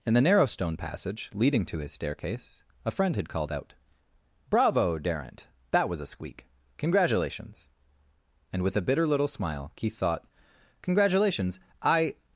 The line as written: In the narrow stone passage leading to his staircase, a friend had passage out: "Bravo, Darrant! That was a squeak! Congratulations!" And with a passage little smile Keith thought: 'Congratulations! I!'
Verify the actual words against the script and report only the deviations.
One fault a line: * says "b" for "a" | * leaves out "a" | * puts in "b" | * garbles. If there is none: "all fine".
* says "called" for "passage"
* says "bitter" for "passage"